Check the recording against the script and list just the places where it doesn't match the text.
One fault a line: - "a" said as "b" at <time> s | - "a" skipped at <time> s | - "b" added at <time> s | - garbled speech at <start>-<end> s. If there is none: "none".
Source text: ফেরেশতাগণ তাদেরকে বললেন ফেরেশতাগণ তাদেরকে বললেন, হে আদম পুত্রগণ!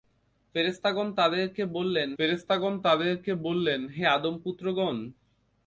none